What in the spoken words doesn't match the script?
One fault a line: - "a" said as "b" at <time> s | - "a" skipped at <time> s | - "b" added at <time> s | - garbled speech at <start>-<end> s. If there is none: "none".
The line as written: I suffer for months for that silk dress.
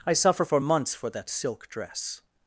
none